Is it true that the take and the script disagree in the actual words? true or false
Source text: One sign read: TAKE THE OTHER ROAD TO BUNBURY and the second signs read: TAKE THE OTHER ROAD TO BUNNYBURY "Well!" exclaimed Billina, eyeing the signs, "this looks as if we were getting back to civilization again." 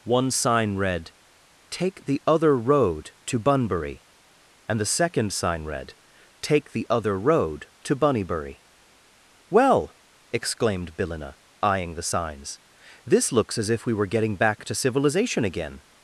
true